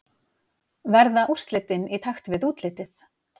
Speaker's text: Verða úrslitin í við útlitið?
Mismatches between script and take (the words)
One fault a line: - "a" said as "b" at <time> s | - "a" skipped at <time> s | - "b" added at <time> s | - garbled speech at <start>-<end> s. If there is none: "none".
- "takt" added at 2.1 s